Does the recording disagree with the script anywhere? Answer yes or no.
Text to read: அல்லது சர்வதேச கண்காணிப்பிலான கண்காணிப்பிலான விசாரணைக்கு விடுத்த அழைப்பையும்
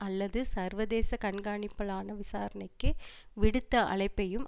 yes